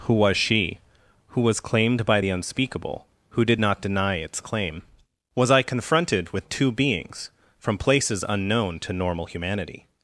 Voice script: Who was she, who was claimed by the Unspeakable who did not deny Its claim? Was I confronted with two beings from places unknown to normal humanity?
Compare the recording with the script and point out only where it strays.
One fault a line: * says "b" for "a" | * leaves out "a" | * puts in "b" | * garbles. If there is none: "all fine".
all fine